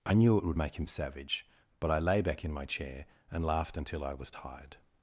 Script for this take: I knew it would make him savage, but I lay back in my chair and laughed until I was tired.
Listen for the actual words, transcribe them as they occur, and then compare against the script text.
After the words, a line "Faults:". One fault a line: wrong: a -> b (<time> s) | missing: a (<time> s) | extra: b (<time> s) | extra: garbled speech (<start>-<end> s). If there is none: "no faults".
I knew it would make him savage, but I lay back in my chair and laughed until I was tired.
Faults:
no faults